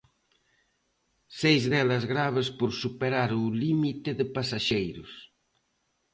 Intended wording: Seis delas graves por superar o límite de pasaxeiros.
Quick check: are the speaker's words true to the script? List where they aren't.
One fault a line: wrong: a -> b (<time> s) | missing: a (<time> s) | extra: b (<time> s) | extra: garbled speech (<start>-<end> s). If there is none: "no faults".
no faults